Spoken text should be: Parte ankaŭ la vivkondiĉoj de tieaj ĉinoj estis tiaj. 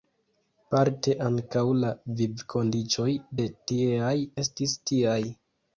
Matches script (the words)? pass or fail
fail